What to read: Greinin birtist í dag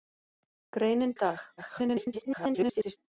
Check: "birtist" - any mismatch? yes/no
yes